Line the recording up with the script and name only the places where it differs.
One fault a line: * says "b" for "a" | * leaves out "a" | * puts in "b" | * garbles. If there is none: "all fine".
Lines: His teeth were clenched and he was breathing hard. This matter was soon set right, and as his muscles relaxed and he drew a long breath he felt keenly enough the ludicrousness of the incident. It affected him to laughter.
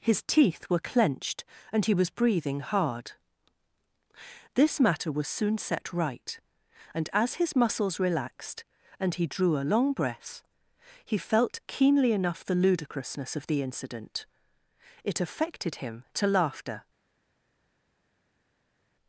all fine